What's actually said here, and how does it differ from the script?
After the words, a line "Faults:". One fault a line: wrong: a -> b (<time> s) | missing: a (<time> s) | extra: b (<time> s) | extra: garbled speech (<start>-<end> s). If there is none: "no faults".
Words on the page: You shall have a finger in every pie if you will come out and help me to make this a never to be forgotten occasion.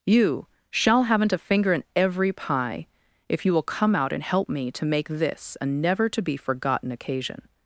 You shall haven't a finger in every pie if you will come out and help me to make this a never to be forgotten occasion.
Faults:
wrong: have -> haven't (1.0 s)